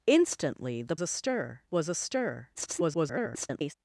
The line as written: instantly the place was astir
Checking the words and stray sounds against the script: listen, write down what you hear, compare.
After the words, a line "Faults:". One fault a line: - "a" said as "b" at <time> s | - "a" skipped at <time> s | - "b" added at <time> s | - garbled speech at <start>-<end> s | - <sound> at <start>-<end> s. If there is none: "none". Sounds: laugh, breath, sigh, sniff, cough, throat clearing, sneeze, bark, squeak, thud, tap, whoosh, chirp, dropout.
instantly the astir was astir [garbled]
Faults:
- "place" said as "astir" at 1.0 s
- garbled speech at 2.5-3.7 s